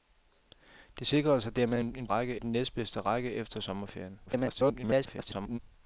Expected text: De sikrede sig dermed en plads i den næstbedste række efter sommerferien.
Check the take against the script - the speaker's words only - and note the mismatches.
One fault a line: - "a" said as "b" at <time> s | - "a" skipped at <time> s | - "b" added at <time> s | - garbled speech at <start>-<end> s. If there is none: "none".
- "plads" said as "række" at 2.0 s
- garbled speech at 4.3-5.6 s